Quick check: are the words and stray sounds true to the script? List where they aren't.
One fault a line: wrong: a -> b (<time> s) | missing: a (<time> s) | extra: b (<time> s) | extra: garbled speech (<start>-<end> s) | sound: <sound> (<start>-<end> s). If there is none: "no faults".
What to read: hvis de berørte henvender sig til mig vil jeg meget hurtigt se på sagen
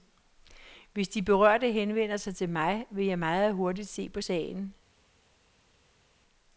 no faults